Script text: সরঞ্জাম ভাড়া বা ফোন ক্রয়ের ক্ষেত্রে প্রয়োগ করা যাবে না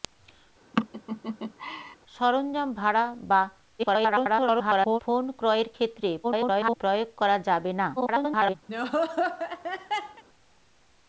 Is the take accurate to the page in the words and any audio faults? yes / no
no